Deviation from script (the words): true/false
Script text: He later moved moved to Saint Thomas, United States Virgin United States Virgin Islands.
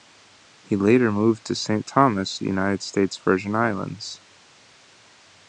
true